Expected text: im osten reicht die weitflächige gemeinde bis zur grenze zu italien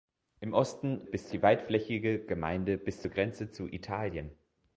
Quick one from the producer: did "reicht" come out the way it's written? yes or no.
no